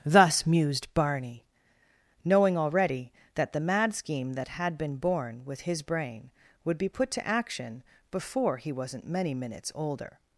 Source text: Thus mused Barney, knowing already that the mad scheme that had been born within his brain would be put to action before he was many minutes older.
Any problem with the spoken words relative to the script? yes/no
yes